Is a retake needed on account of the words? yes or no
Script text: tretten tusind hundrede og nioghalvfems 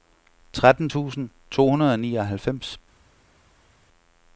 yes